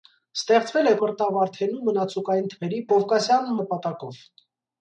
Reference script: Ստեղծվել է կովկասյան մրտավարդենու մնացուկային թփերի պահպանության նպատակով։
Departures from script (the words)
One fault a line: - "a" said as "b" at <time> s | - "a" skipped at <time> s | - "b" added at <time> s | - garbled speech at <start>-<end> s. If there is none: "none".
- "կովկասյան" skipped at 0.9 s
- "պահպանության" said as "կովկասյան" at 2.9 s